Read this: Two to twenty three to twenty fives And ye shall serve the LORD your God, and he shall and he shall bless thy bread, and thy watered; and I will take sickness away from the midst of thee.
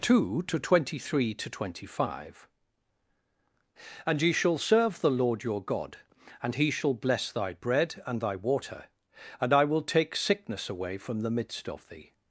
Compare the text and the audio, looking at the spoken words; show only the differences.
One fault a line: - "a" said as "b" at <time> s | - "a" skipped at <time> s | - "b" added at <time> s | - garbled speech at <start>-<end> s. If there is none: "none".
- "fives" said as "five" at 2.1 s
- "and he shall" skipped at 7.0 s
- "watered" said as "water" at 8.3 s